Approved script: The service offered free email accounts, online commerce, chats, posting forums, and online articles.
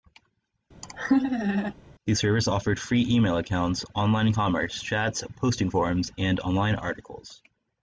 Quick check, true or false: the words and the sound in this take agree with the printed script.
false